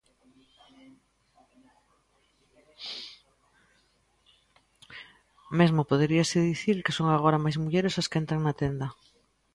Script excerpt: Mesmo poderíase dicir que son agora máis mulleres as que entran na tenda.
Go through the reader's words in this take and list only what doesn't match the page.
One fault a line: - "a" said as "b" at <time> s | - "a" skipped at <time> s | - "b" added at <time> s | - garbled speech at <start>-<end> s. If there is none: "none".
none